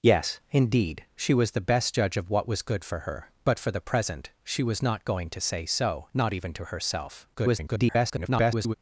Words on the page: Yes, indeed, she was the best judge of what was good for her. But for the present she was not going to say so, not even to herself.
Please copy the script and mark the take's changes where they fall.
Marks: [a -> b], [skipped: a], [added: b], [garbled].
Yes, indeed, she was the best judge of what was good for her. But for the present she was not going to say so, not even to herself. [garbled]